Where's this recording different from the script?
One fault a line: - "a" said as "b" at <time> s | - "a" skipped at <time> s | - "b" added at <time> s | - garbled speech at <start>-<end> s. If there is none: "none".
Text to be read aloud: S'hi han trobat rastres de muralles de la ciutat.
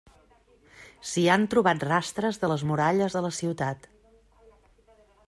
- "les" added at 2.5 s